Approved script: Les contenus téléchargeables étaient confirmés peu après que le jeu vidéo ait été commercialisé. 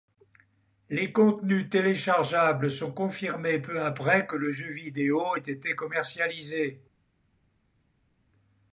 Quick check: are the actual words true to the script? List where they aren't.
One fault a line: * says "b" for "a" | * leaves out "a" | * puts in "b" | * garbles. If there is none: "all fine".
* says "sont" for "étaient"